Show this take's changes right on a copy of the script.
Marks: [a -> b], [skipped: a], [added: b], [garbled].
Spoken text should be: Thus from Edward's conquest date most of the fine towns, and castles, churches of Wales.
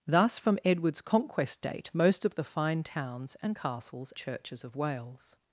Thus from Edward's conquest date most of the fine towns, and castles, churches of Wales.